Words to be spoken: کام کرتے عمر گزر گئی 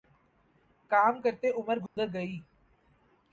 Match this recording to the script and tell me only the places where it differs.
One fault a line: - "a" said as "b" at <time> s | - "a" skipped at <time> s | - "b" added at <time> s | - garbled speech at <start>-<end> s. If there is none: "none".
none